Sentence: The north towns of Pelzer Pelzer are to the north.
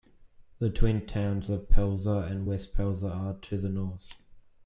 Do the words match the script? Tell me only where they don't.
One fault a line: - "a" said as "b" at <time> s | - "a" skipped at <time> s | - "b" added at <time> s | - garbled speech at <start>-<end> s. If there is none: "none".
- "north" said as "twin" at 0.7 s
- "and West" added at 2.3 s